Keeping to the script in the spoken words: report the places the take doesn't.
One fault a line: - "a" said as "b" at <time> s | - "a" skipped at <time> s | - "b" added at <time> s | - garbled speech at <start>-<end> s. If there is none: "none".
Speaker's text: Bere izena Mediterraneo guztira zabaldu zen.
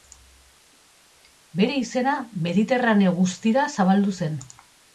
none